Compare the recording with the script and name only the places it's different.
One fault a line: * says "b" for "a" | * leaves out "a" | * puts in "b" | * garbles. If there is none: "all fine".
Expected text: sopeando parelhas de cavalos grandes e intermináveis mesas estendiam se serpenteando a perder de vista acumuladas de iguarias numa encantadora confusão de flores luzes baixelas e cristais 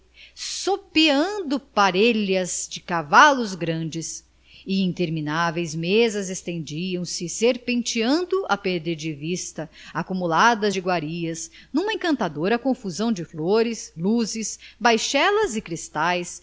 all fine